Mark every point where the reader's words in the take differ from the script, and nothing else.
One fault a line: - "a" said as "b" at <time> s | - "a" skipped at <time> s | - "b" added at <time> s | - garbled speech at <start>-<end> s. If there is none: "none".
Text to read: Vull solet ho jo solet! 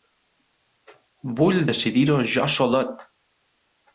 - "solet" said as "decidir" at 1.7 s